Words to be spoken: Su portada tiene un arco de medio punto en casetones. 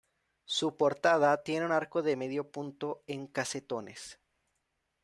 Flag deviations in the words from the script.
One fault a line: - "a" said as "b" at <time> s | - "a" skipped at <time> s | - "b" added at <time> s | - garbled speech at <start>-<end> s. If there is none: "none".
none